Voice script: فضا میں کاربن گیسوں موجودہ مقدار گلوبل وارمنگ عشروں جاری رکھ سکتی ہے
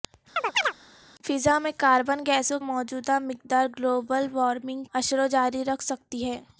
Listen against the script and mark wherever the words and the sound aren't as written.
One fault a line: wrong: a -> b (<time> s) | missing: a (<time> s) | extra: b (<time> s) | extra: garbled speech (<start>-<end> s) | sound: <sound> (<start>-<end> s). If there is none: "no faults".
sound: chirp (0.4-0.7 s)